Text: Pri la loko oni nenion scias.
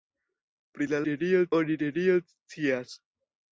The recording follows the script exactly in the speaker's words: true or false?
false